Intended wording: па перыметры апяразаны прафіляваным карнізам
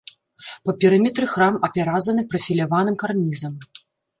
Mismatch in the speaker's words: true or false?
true